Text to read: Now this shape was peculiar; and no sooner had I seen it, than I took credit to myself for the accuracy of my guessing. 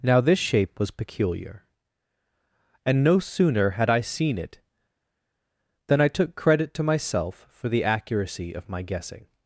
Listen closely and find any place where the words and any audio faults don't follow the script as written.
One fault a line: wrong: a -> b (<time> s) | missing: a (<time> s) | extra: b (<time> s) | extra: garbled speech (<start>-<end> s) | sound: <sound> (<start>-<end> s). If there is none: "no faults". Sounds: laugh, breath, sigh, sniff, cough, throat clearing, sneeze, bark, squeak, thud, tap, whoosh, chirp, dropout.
no faults